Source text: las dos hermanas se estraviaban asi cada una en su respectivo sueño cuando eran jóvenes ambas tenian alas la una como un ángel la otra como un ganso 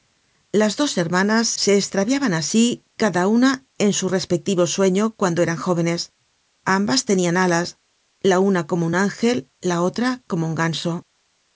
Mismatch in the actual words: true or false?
false